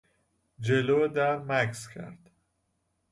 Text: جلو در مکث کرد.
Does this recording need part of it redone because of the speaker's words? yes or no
no